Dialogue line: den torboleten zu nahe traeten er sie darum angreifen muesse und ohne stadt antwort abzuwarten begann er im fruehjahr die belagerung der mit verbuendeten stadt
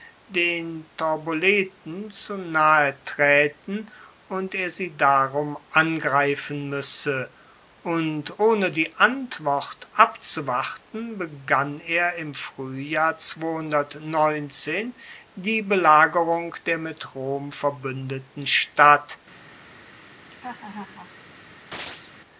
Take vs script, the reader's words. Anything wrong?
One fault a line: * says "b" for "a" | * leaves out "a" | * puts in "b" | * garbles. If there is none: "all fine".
* puts in "und"
* says "die" for "stadt"
* puts in "rom"